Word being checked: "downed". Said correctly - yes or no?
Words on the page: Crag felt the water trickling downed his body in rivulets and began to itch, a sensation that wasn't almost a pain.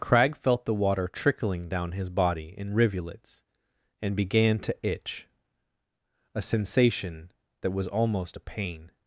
no